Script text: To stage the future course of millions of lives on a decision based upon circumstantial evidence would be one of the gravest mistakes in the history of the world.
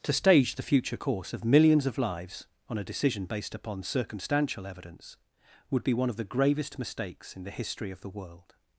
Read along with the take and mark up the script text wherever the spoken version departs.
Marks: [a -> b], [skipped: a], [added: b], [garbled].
To stage the future course of millions of lives on a decision based upon circumstantial evidence would be one of the gravest mistakes in the history of the world.